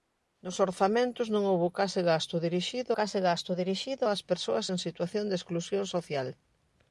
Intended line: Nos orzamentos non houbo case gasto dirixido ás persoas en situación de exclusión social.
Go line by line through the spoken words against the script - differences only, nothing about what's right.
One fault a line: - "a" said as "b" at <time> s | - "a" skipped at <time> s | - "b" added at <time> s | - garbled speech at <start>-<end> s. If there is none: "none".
- "case gasto dirixido" added at 3.0 s